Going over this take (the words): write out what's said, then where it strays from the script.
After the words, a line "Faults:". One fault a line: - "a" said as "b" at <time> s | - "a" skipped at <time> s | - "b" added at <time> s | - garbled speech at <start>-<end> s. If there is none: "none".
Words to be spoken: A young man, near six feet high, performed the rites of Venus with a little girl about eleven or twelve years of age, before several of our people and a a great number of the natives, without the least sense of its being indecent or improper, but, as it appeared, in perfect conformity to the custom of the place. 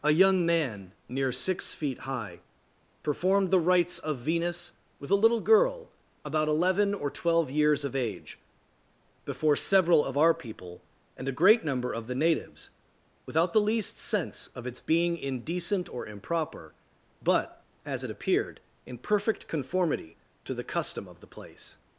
A young man, near six feet high, performed the rites of Venus with a little girl about eleven or twelve years of age, before several of our people and a great number of the natives, without the least sense of its being indecent or improper, but, as it appeared, in perfect conformity to the custom of the place.
Faults:
- "a" skipped at 11.4 s